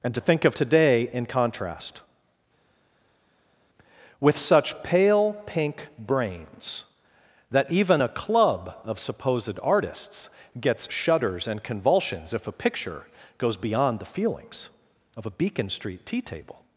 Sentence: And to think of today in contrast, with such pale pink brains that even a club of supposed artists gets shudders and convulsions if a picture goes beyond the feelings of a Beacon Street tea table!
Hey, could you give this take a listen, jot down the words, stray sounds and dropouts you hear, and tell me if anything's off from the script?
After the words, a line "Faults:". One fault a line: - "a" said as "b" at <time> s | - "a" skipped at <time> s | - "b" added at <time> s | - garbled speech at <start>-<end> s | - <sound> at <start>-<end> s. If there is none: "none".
And to think of today in contrast, with such pale pink brains that even a club of supposed artists gets shudders and convulsions if a picture goes beyond the feelings of a Beacon Street tea table!
Faults:
none